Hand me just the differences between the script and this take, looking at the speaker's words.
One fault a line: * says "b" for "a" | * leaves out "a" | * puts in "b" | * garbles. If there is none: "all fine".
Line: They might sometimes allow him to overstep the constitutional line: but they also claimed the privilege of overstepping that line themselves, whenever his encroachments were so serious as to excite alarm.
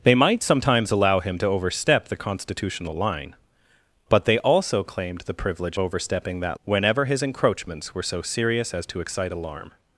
* leaves out "of"
* leaves out "line themselves"